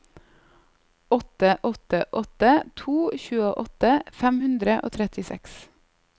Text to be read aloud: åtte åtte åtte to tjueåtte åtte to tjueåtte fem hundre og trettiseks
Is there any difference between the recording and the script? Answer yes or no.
yes